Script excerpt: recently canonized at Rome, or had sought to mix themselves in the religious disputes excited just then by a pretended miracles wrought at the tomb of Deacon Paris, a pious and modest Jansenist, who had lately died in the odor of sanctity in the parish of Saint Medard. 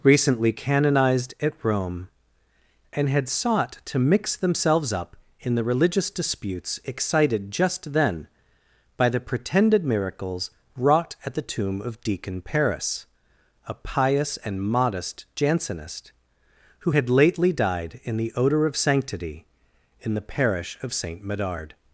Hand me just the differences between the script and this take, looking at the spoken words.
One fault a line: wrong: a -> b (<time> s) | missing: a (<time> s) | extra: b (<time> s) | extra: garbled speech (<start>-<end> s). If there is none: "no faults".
wrong: or -> and (2.9 s)
extra: up (4.9 s)
wrong: a -> the (9.1 s)